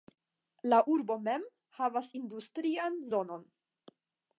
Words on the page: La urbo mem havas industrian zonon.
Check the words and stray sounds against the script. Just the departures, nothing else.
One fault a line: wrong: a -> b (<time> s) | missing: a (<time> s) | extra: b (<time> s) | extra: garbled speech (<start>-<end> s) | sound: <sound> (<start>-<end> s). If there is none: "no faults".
no faults